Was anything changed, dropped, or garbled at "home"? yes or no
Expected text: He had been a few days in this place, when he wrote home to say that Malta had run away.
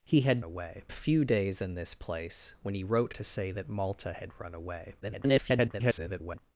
yes